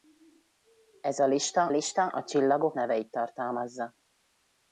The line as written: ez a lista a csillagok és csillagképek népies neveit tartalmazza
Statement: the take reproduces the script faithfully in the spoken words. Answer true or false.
false